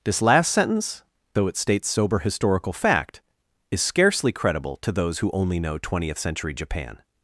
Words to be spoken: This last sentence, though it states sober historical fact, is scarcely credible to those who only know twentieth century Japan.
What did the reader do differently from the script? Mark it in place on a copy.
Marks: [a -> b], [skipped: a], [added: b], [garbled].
This last sentence, though it states sober historical fact, is scarcely credible to those who only know twentieth century Japan.